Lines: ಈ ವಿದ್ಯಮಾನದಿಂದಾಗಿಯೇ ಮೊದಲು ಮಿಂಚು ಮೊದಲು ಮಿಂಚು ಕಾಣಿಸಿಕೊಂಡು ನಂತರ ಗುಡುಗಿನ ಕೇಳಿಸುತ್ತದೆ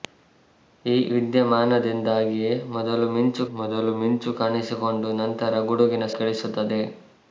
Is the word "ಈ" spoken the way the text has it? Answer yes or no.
yes